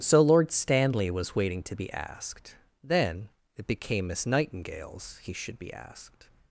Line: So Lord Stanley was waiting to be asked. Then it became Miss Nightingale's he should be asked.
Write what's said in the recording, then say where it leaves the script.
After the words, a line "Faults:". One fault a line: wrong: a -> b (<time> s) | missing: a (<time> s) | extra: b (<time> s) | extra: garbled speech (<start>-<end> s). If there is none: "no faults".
So Lord Stanley was waiting to be asked. Then it became Miss Nightingale's he should be asked.
Faults:
no faults